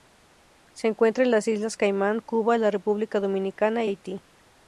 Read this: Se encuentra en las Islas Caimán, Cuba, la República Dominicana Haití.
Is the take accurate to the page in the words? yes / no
yes